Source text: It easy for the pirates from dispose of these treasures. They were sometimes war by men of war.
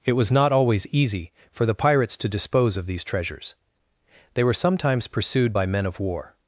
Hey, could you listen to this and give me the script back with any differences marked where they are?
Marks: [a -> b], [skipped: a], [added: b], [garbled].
It [added: was not always] easy for the pirates [from -> to] dispose of these treasures. They were sometimes [war -> pursued] by men of war.